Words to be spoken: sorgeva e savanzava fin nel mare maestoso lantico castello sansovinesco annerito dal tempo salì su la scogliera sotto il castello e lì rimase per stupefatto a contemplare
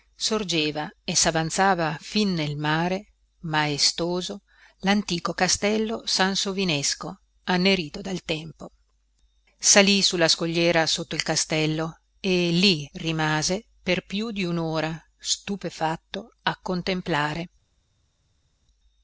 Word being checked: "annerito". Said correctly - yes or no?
yes